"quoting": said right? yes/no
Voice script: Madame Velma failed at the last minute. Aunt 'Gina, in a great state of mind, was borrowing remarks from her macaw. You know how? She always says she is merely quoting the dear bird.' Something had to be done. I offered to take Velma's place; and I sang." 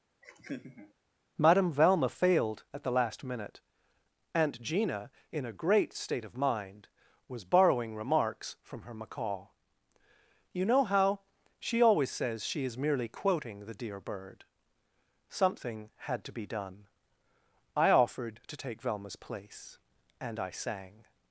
yes